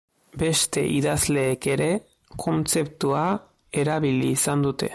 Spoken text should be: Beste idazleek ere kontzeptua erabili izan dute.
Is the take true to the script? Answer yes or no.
yes